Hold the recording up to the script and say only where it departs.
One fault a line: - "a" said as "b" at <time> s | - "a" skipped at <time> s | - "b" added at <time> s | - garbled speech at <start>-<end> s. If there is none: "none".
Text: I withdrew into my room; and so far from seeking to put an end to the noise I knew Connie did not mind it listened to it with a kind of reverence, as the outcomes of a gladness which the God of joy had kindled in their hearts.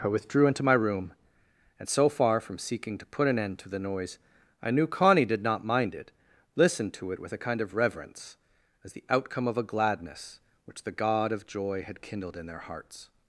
- "outcomes" said as "outcome" at 9.1 s